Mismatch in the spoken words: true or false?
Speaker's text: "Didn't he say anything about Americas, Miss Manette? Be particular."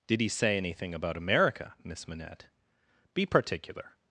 true